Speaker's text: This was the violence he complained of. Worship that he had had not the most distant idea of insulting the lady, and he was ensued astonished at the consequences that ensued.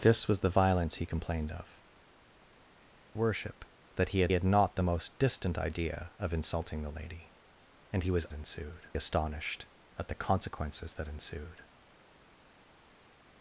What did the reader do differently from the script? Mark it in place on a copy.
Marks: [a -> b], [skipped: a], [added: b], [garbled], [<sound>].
This was the violence he complained of. Worship that he had had not the most distant idea of insulting the lady, and he was ensued astonished at the consequences that ensued.